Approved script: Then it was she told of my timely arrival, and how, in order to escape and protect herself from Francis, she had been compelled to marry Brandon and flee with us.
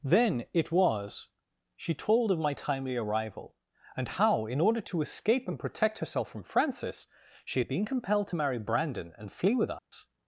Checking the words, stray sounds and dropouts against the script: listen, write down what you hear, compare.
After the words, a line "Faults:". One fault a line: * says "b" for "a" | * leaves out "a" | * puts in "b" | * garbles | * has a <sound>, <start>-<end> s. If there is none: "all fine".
Then it was she told of my timely arrival, and how, in order to escape and protect herself from Francis, she had been compelled to marry Brandon and flee with us.
Faults:
* has a dropout, 9.8-9.9 s